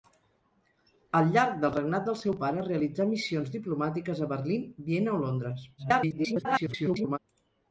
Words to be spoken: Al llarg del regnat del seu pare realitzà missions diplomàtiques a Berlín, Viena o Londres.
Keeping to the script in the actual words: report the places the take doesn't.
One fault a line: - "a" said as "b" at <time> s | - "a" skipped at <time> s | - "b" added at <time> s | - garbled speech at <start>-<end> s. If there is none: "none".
- garbled speech at 5.8-7.2 s